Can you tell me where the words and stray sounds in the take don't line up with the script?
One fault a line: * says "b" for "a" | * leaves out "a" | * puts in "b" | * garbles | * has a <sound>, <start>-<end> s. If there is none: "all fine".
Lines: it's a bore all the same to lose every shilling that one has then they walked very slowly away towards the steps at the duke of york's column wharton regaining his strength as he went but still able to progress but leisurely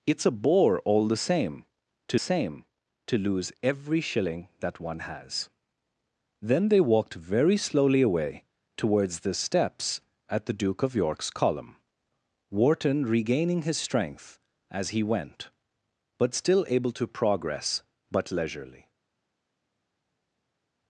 * puts in "same to"